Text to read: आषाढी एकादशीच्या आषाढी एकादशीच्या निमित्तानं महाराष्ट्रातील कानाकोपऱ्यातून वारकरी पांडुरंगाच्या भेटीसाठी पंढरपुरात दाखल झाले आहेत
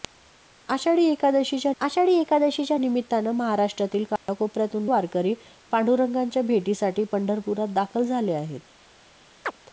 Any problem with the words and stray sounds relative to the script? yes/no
yes